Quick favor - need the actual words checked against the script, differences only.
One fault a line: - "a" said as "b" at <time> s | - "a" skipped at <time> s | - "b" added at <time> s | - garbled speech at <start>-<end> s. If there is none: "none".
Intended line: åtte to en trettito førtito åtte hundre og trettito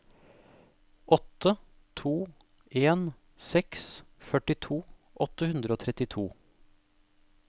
- "trettito" said as "seks" at 3.5 s